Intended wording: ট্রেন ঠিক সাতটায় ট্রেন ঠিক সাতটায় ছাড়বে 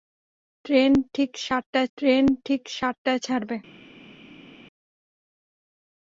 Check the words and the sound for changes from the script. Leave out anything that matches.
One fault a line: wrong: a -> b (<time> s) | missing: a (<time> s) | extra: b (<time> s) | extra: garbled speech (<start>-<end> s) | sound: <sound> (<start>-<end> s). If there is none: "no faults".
no faults